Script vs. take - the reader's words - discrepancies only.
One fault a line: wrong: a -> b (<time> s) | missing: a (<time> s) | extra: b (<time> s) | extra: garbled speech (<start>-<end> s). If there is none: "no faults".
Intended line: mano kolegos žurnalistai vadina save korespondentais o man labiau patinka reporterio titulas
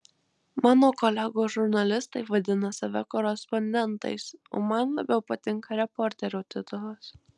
no faults